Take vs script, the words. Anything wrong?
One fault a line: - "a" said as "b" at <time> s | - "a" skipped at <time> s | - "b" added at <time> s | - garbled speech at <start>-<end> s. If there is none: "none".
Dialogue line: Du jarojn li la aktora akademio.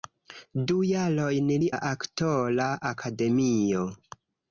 none